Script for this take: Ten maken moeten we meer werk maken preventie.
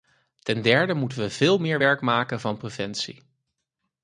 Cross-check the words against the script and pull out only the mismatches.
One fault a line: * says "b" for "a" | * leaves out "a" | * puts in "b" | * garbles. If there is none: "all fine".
* says "derde" for "maken"
* puts in "veel"
* puts in "van"